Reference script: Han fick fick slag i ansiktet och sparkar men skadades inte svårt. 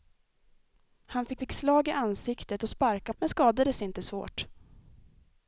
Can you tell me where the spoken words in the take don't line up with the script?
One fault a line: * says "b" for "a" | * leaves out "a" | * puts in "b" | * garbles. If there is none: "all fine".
all fine